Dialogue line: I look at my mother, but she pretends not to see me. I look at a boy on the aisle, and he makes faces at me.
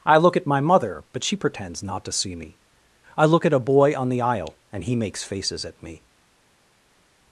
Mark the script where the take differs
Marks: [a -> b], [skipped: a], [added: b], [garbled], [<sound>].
I look at my mother, but she pretends not to see me. I look at a boy on the aisle, and he makes faces at me.